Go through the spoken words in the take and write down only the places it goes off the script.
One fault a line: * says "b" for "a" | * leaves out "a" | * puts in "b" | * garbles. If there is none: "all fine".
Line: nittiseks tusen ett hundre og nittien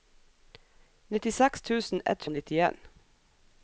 * leaves out "hundre"